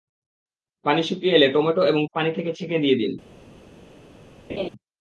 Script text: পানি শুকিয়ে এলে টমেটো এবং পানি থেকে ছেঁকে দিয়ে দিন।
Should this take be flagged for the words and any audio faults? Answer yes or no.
yes